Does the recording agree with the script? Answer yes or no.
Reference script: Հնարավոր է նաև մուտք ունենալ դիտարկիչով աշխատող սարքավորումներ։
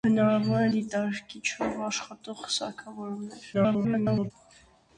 no